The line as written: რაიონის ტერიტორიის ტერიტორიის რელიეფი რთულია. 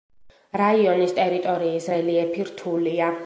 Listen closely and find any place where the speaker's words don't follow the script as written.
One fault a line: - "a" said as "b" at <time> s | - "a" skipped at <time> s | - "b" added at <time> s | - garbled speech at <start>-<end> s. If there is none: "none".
- "ტერიტორიის" skipped at 1.9 s